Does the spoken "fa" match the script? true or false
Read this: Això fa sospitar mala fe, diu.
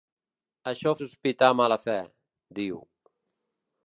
false